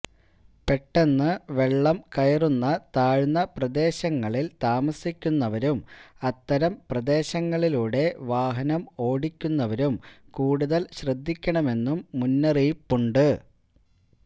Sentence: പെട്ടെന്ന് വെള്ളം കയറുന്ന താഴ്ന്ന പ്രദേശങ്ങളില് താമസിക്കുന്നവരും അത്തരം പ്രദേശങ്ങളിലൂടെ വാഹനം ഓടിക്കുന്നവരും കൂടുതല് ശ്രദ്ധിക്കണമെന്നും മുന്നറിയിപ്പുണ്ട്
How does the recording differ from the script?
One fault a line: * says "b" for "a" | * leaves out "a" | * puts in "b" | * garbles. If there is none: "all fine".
all fine